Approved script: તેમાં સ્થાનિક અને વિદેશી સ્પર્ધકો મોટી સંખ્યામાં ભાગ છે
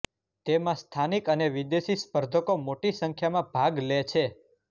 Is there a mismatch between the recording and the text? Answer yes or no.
yes